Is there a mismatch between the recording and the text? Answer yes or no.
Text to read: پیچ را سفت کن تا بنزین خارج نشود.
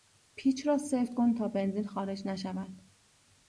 no